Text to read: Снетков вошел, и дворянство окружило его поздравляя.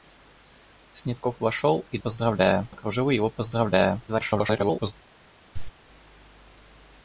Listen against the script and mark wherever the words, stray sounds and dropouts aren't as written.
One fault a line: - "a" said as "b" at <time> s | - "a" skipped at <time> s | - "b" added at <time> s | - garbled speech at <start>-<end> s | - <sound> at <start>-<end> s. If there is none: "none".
- "дворянство" said as "поздравляя" at 2.0 s
- garbled speech at 4.1-4.9 s
- cough at 5.5-5.7 s